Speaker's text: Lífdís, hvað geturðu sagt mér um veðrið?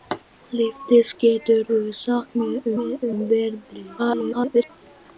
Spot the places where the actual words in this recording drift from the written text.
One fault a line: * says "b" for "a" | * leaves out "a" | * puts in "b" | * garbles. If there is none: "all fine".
* leaves out "hvað"
* puts in "mér"
* garbles